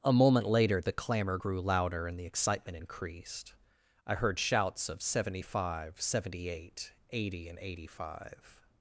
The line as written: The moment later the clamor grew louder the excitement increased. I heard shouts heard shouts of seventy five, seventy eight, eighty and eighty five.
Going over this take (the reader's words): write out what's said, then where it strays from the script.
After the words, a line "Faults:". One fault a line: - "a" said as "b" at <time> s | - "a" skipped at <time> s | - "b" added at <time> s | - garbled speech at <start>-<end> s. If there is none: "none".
A moment later the clamor grew louder and the excitement increased. I heard shouts of seventy five, seventy eight, eighty and eighty five.
Faults:
- "The" said as "A" at 0.0 s
- "and" added at 2.1 s
- "heard shouts" skipped at 4.9 s